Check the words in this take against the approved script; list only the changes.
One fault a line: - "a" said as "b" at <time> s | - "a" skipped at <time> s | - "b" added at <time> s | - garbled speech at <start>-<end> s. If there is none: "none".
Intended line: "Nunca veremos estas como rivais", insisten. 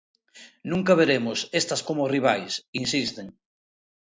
none